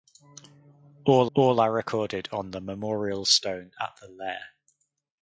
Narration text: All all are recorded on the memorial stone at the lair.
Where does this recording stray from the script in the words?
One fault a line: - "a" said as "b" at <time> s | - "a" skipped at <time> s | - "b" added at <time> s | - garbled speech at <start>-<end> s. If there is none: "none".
none